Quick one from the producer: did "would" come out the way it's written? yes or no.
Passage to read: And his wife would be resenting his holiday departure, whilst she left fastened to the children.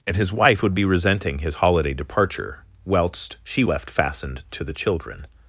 yes